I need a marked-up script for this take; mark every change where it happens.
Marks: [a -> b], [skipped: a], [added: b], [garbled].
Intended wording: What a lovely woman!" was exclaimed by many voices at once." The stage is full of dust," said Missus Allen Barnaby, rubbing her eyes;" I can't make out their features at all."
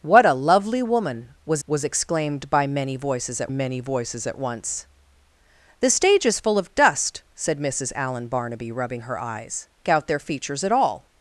What a lovely woman!" was [added: was] exclaimed by many voices at [added: many voices at] once." The stage is full of dust," said Missus Allen Barnaby, rubbing her eyes;" [skipped: I can't make] out their features at all."